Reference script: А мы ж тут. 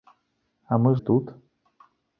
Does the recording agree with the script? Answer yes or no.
yes